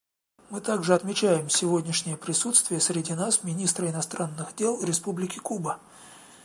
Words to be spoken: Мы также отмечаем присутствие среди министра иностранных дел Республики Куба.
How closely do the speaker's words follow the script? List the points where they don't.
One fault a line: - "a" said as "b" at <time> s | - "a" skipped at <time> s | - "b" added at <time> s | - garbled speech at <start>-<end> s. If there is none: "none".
- "сегодняшнее" added at 1.5 s
- "нас" added at 3.1 s